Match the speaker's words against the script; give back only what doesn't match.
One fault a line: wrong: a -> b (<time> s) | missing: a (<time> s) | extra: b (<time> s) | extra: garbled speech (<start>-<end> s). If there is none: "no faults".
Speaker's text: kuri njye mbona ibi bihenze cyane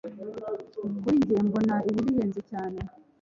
no faults